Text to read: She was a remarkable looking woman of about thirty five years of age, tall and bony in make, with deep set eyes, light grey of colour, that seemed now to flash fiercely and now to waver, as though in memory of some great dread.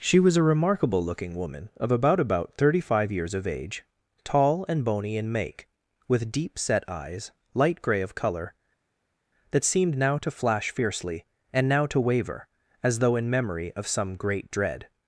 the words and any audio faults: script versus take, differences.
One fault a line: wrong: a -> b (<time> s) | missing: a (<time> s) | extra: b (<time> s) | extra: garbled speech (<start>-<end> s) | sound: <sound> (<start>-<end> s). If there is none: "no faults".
extra: about (2.2 s)